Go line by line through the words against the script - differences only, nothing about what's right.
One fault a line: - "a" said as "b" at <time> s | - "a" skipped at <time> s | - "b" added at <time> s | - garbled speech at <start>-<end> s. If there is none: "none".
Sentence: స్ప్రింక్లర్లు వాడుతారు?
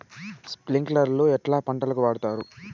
- "ఎట్లా పంటలకు" added at 1.3 s